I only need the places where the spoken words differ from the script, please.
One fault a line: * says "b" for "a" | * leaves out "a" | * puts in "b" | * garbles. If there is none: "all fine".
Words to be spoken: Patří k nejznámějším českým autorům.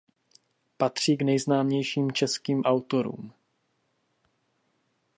all fine